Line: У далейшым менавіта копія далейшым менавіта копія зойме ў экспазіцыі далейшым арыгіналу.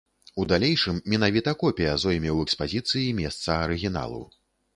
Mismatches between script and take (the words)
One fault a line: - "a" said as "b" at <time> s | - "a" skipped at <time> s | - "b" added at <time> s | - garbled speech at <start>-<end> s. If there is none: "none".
- "далейшым менавіта копія" skipped at 1.9 s
- "далейшым" said as "месца" at 3.2 s